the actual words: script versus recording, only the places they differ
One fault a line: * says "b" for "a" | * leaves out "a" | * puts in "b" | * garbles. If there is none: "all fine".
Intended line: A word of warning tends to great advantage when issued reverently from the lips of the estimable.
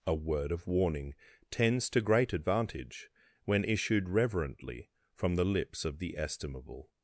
all fine